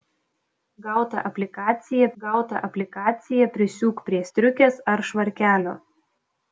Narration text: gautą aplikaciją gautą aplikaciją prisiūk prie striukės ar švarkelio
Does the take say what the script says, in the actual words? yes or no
yes